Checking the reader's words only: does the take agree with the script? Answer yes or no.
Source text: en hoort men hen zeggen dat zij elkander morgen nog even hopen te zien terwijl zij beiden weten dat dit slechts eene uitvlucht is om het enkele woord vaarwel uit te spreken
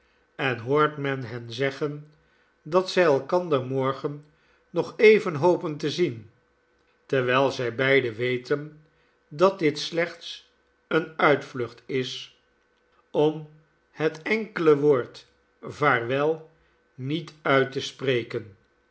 no